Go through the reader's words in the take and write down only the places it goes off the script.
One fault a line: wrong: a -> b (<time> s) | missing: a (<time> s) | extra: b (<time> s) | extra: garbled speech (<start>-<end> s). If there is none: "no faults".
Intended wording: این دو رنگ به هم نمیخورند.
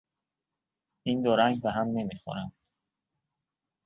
no faults